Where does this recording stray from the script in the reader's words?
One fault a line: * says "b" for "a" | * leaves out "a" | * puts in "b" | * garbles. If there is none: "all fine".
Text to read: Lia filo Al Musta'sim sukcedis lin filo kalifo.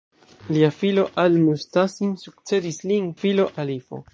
all fine